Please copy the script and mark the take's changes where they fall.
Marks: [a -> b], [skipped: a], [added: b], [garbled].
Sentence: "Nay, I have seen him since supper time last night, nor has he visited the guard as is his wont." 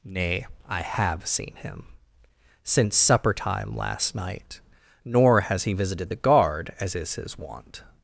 "Nay, I have seen him since supper time last night, nor has he visited the guard as is his wont."